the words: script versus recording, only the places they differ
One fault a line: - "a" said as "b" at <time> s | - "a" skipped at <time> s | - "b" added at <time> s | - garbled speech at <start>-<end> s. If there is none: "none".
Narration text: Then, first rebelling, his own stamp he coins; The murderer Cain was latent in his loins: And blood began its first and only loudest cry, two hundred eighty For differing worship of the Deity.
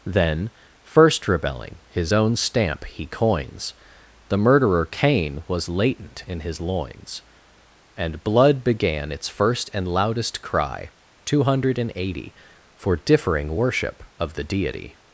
- "only" skipped at 9.9 s